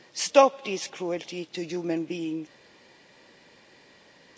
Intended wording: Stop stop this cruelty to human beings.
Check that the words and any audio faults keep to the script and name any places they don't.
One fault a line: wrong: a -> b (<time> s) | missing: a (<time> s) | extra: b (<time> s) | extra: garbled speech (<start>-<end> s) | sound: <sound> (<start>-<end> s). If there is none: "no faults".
missing: stop (0.7 s)